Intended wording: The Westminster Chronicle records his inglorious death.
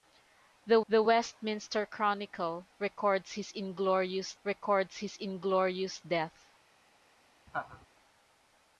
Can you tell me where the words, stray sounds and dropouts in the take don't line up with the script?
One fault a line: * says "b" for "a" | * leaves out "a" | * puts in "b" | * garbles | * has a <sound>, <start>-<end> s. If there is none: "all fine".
* puts in "the"
* puts in "records his inglorious"
* has a laugh, 7.5-7.9 s